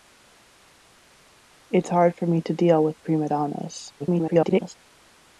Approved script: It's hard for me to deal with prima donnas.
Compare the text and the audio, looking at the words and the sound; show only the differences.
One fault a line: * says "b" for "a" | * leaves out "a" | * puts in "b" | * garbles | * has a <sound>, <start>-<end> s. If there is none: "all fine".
* garbles